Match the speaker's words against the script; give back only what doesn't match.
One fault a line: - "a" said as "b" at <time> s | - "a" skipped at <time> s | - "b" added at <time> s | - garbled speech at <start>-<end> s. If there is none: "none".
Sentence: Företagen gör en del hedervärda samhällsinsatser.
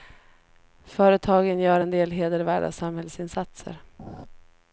none